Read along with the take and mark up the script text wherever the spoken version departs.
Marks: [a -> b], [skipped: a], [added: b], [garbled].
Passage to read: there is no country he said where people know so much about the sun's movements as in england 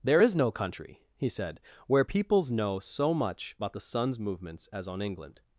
there is no country he said where [people -> peoples] know so much about the sun's movements as [in -> on] england